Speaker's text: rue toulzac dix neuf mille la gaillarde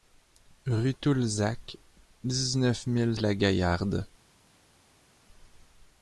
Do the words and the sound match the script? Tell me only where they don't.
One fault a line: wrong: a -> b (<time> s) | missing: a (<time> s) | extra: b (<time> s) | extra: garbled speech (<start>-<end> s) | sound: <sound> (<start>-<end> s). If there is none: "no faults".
no faults